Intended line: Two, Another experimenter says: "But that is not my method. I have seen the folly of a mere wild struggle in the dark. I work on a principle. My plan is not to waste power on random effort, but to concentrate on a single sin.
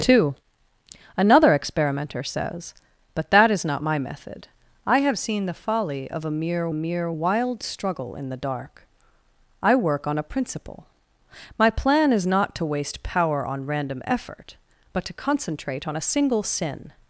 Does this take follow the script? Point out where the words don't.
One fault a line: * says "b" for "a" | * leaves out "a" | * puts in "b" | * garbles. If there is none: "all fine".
* puts in "mere"